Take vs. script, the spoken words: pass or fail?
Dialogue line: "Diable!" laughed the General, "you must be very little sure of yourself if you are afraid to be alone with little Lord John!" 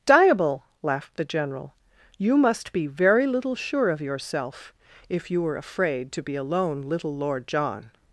fail